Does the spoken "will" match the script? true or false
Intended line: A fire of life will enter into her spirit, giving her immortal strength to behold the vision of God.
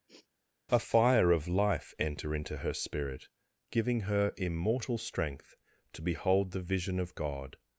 false